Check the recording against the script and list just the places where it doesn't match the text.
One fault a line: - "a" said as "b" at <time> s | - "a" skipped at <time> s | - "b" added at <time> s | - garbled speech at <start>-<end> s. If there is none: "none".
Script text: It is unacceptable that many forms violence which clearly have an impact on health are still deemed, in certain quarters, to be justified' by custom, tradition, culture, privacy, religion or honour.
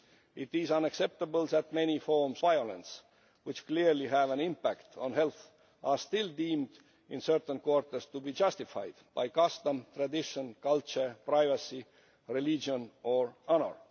none